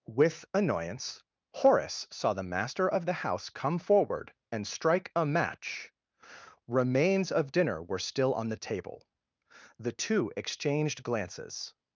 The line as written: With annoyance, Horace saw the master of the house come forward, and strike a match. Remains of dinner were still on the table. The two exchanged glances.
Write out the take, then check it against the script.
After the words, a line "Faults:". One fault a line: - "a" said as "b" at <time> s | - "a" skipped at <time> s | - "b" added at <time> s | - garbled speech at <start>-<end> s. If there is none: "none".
With annoyance, Horace saw the master of the house come forward, and strike a match. Remains of dinner were still on the table. The two exchanged glances.
Faults:
none